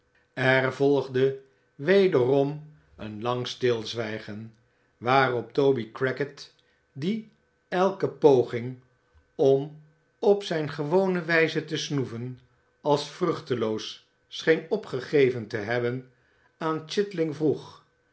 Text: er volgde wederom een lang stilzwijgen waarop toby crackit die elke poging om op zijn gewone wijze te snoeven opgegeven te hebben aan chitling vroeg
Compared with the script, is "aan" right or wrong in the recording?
right